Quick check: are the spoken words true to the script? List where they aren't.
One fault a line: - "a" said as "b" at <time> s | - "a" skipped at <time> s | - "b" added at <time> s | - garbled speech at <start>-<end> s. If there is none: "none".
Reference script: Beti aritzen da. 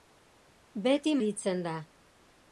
none